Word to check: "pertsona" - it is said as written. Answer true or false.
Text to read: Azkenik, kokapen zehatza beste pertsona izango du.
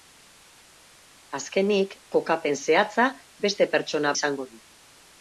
true